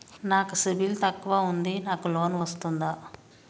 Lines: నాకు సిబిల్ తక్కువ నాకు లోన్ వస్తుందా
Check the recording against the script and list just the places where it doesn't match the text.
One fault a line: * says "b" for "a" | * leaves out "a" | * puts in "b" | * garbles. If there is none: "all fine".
* puts in "ఉంది"